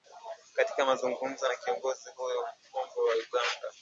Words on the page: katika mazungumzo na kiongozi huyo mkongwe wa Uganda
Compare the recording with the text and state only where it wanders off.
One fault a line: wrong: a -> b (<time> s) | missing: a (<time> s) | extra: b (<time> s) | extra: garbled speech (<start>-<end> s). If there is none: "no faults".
no faults